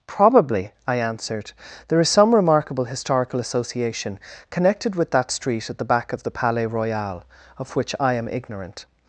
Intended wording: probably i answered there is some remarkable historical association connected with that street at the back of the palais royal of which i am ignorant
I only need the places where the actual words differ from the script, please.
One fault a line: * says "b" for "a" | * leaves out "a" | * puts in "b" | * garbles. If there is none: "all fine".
all fine